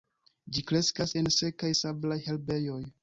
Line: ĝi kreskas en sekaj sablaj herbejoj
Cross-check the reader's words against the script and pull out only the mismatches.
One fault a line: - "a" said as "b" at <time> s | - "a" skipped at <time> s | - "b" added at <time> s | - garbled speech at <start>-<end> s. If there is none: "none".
none